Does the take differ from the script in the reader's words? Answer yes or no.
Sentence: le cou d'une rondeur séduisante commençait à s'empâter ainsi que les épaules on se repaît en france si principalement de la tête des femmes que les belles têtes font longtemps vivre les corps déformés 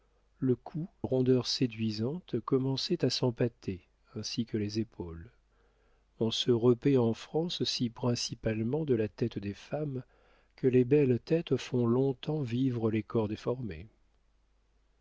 yes